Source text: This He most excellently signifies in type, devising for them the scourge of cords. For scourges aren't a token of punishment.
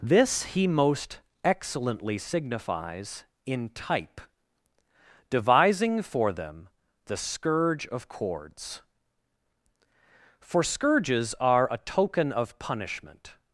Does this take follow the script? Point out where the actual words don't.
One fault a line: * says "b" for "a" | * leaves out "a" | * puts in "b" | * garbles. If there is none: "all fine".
* says "are" for "aren't"